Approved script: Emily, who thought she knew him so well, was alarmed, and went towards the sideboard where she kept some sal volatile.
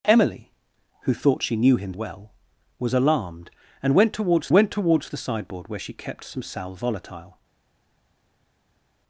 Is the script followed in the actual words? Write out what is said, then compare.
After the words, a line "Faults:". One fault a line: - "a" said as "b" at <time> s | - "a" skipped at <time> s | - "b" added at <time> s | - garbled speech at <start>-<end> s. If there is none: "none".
Emily, who thought she knew him well, was alarmed, and went towards went towards the sideboard where she kept some sal volatile.
Faults:
- "so" skipped at 1.9 s
- "went towards" added at 4.5 s